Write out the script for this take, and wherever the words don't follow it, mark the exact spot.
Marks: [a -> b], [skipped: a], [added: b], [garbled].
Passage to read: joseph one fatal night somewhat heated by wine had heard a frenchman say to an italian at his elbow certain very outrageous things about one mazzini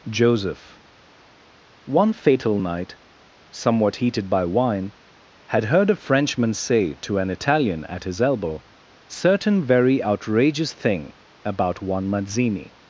joseph one fatal night somewhat heated by wine had heard a frenchman say to an italian at his elbow certain very outrageous [things -> thing] about one mazzini